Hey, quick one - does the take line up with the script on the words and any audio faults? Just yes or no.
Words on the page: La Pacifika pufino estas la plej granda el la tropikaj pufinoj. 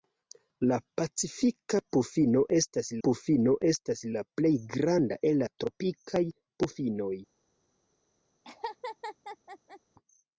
no